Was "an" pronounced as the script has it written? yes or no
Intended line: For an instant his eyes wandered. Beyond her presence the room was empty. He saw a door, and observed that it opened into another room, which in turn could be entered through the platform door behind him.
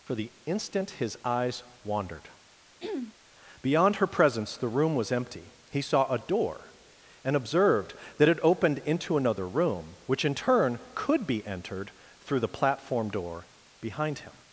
no